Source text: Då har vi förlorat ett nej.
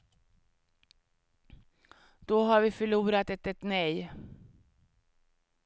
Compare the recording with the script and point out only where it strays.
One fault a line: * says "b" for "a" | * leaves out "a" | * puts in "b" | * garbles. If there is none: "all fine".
* puts in "ett"